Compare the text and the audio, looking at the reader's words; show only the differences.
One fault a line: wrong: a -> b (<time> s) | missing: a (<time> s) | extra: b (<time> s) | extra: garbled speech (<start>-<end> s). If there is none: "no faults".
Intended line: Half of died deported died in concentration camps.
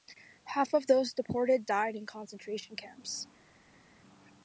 wrong: died -> those (0.9 s)